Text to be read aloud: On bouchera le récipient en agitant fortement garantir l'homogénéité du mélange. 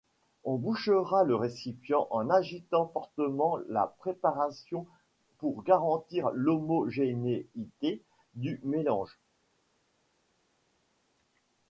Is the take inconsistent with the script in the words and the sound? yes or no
yes